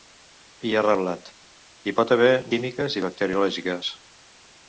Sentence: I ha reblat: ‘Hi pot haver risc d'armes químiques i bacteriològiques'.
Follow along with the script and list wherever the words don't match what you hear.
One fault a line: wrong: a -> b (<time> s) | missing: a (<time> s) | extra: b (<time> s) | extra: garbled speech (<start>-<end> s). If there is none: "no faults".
missing: risc d'armes (2.3 s)